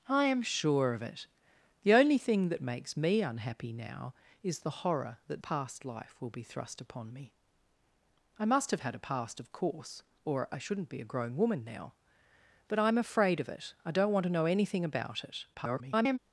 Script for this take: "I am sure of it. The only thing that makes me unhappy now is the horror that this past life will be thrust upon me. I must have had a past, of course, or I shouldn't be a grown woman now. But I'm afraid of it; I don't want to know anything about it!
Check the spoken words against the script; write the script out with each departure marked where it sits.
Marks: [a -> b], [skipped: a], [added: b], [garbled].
"I am sure of it. The only thing that makes me unhappy now is the horror that [skipped: this] past life will be thrust upon me. I must have had a past, of course, or I shouldn't be a grown woman now. But I'm afraid of it; I don't want to know anything about it! [garbled]